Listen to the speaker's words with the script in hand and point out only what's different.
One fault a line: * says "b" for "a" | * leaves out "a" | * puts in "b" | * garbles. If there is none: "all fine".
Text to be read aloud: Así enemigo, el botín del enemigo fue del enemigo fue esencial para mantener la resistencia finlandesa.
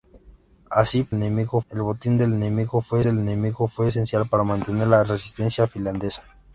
all fine